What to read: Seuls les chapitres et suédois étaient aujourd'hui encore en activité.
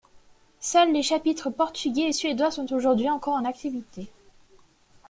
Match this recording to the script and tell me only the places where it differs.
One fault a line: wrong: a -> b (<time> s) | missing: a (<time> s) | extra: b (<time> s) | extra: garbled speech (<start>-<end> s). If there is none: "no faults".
extra: portugais (1.5 s)
wrong: étaient -> sont (2.5 s)